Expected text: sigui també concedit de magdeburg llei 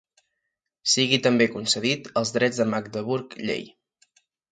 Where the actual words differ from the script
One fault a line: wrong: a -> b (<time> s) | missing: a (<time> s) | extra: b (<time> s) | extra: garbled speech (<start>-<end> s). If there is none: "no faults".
extra: els drets (2.2 s)